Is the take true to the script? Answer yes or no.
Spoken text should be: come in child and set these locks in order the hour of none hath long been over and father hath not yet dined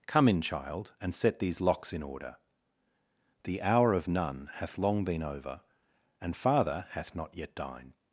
yes